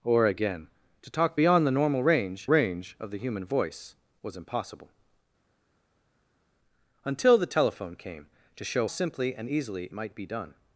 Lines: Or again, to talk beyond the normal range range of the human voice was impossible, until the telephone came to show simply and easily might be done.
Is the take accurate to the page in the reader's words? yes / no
yes